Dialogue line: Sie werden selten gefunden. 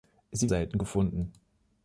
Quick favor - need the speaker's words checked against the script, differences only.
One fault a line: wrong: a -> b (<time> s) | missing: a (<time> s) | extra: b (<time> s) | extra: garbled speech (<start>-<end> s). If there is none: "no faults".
missing: werden (0.5 s)